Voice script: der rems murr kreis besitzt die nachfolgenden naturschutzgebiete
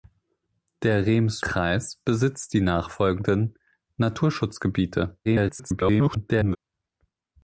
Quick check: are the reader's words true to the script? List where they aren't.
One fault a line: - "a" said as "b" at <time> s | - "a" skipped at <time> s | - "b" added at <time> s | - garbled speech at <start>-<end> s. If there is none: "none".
- "murr" skipped at 1.4 s
- garbled speech at 5.2-6.6 s